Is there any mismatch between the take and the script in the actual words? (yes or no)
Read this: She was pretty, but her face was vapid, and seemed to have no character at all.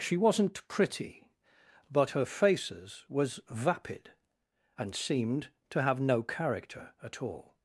yes